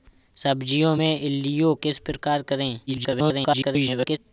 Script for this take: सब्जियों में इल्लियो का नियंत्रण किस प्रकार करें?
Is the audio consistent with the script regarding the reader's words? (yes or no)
no